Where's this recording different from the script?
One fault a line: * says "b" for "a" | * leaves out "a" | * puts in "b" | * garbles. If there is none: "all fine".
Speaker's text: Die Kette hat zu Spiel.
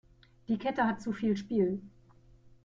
* puts in "viel"